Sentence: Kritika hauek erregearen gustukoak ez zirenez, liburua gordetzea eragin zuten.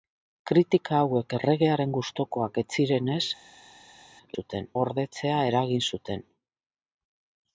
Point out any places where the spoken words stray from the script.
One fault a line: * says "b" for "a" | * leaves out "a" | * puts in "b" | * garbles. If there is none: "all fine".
* says "zuten" for "liburua"